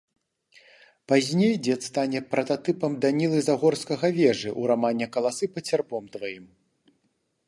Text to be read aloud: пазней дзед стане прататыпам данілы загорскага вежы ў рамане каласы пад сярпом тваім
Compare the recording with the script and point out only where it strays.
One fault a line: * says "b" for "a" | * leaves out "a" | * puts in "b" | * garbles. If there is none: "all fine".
all fine